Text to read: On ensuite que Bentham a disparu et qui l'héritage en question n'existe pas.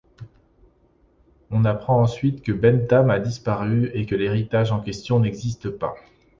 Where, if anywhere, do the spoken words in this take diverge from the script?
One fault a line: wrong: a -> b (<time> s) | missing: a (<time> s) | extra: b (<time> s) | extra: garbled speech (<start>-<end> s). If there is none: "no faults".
extra: apprend (1.6 s)
wrong: qui -> que (4.0 s)